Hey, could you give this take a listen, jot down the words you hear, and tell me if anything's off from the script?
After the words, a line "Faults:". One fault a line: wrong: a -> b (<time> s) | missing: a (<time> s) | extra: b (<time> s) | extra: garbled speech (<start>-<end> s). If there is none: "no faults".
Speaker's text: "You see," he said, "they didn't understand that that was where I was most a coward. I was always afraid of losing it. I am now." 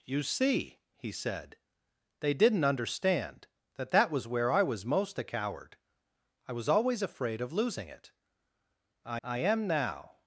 "You see," he said, "they didn't understand that that was where I was most a coward. I was always afraid of losing it. I I am now."
Faults:
extra: I (9.2 s)